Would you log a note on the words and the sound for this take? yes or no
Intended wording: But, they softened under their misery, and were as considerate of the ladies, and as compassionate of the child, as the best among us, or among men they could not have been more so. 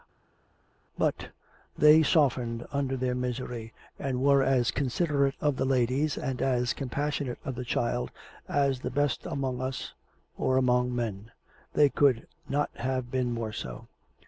no